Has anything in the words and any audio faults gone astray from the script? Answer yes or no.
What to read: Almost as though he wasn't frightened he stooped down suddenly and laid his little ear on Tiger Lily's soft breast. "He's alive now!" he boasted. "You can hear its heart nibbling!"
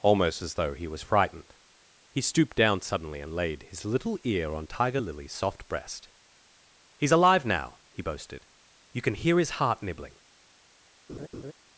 yes